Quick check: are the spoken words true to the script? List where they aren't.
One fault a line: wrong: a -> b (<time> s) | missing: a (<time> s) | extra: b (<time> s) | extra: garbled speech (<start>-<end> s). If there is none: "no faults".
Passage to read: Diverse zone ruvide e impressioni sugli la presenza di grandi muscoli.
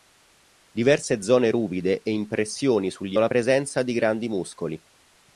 no faults